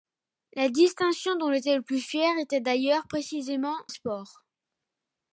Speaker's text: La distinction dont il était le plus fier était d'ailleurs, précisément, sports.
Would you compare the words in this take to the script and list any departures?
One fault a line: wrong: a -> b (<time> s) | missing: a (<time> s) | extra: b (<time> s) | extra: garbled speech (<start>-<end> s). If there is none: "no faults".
no faults